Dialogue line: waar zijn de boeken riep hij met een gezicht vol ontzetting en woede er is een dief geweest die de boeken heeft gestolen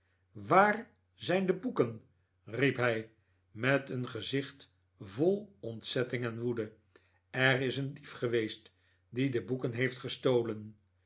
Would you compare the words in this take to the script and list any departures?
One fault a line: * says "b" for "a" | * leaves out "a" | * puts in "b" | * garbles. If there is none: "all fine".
all fine